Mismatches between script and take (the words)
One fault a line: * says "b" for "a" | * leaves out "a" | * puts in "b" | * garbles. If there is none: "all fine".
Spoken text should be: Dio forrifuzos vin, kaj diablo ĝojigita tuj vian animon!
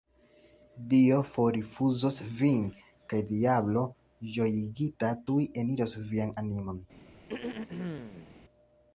* puts in "eniros"